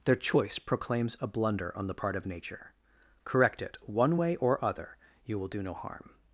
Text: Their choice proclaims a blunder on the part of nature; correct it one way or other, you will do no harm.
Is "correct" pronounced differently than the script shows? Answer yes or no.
no